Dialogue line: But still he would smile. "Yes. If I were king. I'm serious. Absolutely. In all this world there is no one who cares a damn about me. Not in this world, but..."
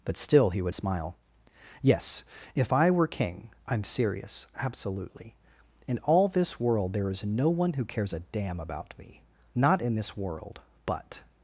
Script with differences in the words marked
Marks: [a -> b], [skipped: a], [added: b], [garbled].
But still he would smile. "Yes. If I were king. I'm serious. Absolutely. In all this world there is no one who cares a damn about me. Not in this world, but..."